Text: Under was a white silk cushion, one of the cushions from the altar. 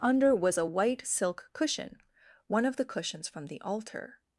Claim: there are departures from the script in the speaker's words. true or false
false